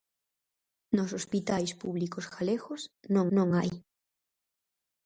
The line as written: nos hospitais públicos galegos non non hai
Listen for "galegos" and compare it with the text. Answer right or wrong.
right